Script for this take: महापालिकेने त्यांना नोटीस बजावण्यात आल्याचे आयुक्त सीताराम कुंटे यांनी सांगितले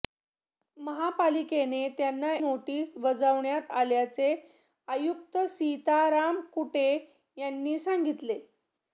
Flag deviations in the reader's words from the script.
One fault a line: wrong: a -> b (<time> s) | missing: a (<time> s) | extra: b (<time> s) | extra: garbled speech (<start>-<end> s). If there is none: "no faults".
no faults